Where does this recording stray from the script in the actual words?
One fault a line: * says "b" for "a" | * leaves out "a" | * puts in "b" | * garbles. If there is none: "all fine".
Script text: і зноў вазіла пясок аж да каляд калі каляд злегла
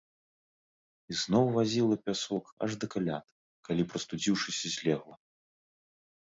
* says "прастудзіўшыся" for "каляд"